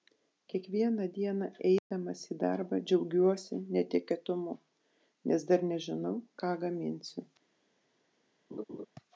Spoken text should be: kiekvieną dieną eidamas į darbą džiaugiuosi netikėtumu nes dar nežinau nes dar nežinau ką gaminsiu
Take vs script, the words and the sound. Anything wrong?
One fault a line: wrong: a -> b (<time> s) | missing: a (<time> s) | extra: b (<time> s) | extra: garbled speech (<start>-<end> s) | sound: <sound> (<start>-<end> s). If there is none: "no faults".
sound: dropout (1.8-1.9 s)
missing: nes dar nežinau (6.2 s)
sound: laugh (8.5-8.9 s)